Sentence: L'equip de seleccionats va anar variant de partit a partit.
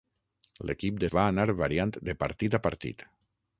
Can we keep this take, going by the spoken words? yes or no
no